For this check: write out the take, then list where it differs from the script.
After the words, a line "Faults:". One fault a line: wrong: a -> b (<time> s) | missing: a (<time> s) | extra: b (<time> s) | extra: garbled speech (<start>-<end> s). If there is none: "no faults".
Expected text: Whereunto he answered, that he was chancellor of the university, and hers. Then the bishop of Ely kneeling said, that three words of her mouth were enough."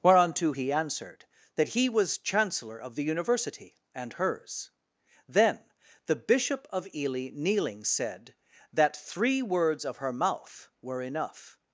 Whereunto he answered, that he was chancellor of the university, and hers. Then the bishop of Ely kneeling said, that three words of her mouth were enough."
Faults:
no faults